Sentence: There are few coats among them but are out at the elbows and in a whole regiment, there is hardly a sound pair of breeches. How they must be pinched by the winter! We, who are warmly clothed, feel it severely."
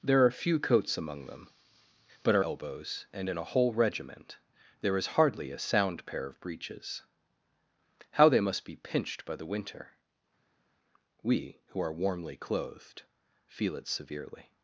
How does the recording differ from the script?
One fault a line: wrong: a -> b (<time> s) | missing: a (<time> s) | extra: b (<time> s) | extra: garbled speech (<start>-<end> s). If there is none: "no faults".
missing: out at the (2.5 s)